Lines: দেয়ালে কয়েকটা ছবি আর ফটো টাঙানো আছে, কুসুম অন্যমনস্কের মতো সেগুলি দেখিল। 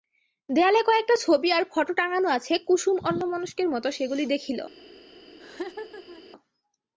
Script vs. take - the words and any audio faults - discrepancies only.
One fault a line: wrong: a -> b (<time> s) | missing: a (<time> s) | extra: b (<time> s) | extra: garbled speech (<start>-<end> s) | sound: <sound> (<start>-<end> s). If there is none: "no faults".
sound: laugh (5.4-6.2 s)